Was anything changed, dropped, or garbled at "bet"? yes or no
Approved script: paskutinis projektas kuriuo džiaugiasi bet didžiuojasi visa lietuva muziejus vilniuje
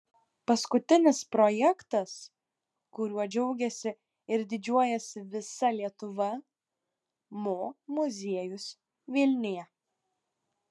yes